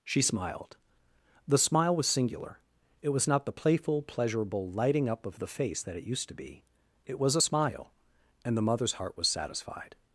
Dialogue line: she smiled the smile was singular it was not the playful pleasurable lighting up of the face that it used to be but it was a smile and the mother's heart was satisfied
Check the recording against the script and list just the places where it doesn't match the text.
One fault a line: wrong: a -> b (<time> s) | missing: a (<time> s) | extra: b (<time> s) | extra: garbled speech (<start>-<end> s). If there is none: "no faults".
missing: but (6.6 s)